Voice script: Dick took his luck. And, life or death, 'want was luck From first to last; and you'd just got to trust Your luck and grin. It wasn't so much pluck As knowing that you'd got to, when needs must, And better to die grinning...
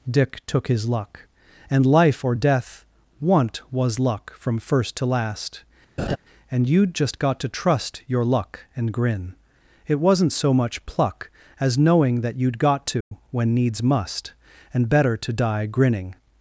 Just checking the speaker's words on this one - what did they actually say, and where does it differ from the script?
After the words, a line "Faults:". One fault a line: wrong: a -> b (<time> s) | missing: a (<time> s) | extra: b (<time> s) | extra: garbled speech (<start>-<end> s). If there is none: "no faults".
Dick took his luck. And, life or death, 'want was luck From first to last; and you'd just got to trust Your luck and grin. It wasn't so much pluck As knowing that you'd got to, when needs must, And better to die grinning...
Faults:
no faults